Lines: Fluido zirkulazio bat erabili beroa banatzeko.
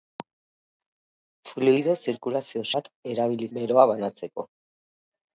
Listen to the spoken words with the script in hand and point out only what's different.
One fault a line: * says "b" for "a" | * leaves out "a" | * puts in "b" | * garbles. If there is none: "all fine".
all fine